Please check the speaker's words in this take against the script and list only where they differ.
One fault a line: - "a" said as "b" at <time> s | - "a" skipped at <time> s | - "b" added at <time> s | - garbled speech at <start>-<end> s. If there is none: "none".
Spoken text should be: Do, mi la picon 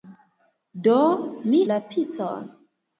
none